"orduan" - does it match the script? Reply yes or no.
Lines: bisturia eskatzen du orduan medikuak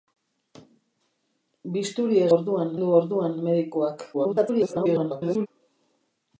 yes